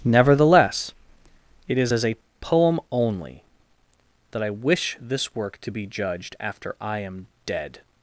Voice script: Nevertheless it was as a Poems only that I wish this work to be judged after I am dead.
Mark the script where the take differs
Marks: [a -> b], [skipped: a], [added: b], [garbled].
Nevertheless it [was -> is] as a [Poems -> Poem] only that I wish this work to be judged after I am dead.